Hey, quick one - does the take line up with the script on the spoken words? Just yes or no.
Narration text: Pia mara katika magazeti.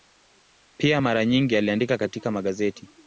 no